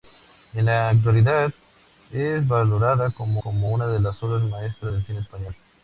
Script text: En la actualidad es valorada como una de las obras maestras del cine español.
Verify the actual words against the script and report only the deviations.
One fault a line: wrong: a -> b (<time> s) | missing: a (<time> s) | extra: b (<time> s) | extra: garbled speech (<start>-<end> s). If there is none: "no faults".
extra: como (3.4 s)